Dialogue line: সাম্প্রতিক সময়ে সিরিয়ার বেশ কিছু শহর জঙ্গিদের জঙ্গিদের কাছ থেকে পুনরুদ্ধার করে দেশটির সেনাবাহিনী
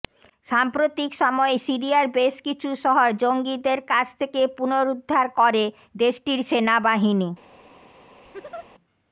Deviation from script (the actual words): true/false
true